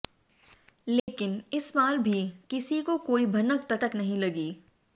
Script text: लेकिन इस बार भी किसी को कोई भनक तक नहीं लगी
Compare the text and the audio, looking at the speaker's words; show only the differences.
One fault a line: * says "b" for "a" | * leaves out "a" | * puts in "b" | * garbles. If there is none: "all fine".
* puts in "तक"